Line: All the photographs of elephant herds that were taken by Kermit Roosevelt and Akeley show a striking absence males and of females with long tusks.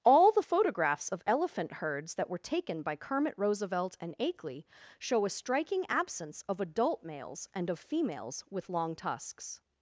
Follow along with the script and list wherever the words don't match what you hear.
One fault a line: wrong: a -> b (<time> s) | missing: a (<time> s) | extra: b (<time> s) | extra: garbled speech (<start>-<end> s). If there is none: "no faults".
extra: of adult (6.5 s)